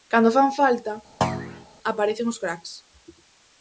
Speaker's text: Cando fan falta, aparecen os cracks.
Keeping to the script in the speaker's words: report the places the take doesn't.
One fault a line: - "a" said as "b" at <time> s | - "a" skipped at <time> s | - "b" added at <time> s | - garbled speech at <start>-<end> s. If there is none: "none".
none